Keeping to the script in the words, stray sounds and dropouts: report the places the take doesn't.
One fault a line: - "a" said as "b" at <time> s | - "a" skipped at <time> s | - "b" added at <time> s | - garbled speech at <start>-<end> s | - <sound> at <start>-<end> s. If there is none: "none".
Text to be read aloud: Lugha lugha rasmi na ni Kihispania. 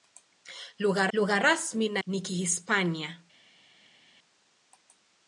none